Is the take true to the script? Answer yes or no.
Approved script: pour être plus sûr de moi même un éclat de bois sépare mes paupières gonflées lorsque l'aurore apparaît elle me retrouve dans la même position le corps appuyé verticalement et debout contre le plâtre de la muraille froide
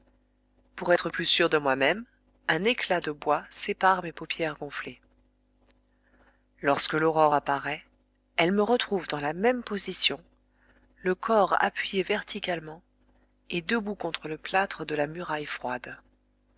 yes